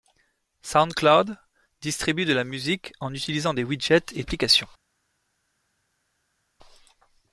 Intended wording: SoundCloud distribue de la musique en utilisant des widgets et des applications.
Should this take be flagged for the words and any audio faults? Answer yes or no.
yes